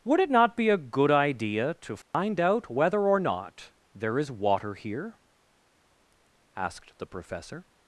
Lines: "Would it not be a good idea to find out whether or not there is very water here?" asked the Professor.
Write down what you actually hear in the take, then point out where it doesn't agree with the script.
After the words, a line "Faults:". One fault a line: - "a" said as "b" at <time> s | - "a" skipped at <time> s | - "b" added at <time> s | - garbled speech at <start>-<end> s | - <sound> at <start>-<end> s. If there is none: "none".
"Would it not be a good idea to find out whether or not there is water here?" asked the Professor.
Faults:
- dropout at 2.0-2.1 s
- "very" skipped at 4.3 s